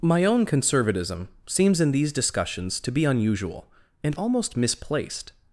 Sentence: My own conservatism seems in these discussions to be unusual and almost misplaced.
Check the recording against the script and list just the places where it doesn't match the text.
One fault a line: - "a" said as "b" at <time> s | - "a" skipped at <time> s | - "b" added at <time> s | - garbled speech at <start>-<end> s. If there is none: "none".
none